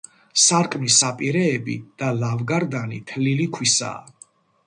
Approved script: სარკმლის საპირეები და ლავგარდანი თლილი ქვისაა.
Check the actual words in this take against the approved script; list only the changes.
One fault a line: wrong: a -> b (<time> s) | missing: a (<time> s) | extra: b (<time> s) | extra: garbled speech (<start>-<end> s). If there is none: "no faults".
no faults